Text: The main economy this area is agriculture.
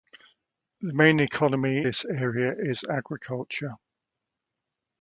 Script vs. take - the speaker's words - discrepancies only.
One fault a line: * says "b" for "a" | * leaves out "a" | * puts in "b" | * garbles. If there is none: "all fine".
all fine